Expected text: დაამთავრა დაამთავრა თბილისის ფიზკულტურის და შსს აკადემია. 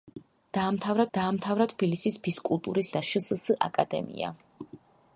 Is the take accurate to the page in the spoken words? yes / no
yes